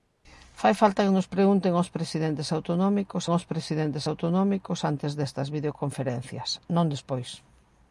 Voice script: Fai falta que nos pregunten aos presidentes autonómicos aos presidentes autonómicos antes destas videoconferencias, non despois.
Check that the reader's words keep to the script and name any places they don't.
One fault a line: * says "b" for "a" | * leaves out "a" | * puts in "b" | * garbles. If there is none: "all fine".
all fine